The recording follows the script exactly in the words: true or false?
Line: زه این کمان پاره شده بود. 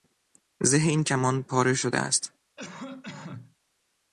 false